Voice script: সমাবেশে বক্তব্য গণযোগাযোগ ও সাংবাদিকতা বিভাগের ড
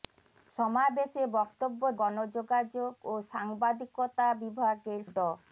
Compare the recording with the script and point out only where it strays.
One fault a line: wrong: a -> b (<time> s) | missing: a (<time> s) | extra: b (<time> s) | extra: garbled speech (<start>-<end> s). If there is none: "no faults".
no faults